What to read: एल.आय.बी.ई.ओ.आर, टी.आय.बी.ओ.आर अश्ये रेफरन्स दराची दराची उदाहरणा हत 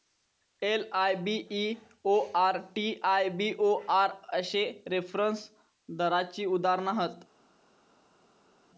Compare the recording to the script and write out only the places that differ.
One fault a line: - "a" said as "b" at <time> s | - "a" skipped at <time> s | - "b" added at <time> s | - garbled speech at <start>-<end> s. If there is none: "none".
- "दराची" skipped at 6.4 s